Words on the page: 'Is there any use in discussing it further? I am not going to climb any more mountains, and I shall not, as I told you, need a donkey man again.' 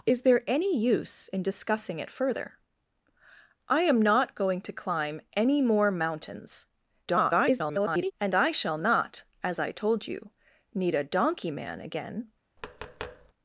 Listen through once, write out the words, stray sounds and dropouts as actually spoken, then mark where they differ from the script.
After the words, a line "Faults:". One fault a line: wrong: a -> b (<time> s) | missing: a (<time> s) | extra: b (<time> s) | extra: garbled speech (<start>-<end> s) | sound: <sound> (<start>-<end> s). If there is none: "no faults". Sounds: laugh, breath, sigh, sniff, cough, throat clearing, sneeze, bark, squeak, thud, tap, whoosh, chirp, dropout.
'Is there any use in discussing it further? I am not going to climb any more mountains, [garbled] and I shall not, as I told you, need a donkey man again.'
Faults:
extra: garbled speech (7.1-8.1 s)
sound: tap (12.6-13.3 s)